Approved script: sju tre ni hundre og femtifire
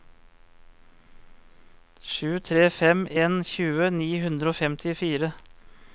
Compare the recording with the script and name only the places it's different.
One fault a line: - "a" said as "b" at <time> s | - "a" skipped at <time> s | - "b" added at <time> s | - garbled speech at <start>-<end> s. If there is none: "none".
- "fem en tjue" added at 2.8 s